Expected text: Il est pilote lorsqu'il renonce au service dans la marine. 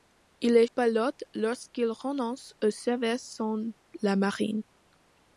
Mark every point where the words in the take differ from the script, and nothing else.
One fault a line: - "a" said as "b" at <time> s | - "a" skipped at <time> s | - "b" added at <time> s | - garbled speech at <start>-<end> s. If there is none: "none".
none